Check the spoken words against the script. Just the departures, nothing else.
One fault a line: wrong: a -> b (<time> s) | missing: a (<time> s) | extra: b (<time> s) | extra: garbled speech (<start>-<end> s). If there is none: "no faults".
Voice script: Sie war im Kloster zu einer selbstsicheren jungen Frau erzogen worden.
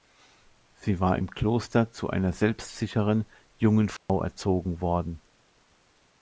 no faults